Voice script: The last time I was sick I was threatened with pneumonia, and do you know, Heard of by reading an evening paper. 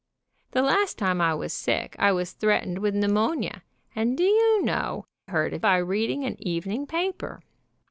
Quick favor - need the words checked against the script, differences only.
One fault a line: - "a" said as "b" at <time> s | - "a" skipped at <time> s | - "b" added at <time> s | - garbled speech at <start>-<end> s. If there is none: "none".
none